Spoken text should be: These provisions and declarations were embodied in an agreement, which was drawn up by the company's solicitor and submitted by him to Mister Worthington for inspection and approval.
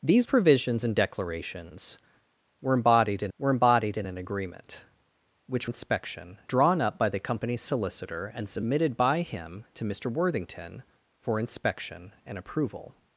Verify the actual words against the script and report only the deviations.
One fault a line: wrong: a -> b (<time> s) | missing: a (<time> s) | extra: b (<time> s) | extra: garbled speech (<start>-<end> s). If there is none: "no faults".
extra: were embodied in (3.4 s)
wrong: was -> inspection (5.7 s)